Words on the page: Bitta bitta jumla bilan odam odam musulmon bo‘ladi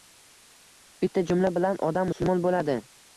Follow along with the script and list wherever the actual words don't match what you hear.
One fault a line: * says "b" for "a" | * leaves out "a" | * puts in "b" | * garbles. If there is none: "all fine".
* leaves out "bitta"
* leaves out "odam"